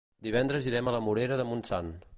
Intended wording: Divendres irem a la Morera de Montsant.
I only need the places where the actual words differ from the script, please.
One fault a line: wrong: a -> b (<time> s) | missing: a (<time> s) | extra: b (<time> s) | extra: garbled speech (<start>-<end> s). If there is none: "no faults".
no faults